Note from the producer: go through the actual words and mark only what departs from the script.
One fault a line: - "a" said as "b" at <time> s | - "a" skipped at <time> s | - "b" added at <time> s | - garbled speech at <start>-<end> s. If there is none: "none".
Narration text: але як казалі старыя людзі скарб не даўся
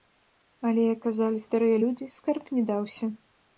none